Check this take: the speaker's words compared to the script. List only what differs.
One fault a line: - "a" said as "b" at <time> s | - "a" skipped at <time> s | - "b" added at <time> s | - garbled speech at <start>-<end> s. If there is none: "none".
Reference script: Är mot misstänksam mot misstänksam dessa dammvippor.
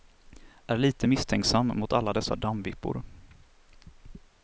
- "mot" said as "lite" at 0.8 s
- "misstänksam" said as "alla" at 1.9 s